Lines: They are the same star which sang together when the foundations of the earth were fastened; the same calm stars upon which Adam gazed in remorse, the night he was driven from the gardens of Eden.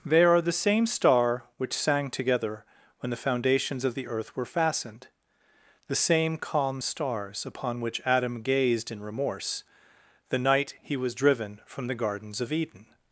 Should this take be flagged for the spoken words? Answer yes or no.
no